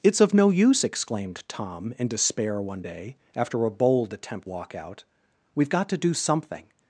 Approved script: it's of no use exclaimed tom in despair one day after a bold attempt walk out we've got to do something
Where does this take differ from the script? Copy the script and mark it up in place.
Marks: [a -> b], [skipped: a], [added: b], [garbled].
it's of no use exclaimed tom in despair one day after a bold attempt walk out we've got to do something